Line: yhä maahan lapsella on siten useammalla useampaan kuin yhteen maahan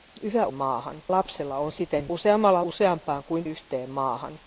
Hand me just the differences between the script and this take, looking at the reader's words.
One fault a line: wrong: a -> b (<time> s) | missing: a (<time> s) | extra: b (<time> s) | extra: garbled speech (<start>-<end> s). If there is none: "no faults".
no faults